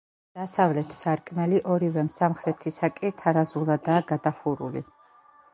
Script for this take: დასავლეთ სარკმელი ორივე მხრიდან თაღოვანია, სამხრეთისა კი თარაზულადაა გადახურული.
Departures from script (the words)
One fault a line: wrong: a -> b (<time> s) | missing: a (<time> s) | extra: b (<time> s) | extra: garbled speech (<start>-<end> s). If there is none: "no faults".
missing: მხრიდან თაღოვანია (2.0 s)